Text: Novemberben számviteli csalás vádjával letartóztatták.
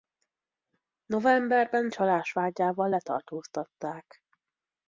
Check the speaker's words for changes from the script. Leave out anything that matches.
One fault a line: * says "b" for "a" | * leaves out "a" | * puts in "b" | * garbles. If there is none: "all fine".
* leaves out "számviteli"